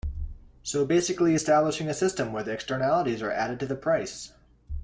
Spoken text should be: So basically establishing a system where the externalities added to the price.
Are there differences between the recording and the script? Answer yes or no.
yes